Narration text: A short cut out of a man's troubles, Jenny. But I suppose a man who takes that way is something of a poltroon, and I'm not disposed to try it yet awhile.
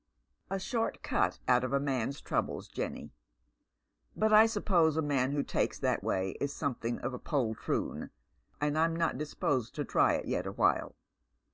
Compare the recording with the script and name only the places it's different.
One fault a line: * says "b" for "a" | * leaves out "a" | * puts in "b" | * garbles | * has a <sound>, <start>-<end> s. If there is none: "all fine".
all fine